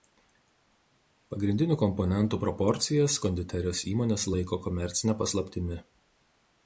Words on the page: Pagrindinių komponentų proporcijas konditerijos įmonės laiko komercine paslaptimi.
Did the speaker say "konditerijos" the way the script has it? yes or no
yes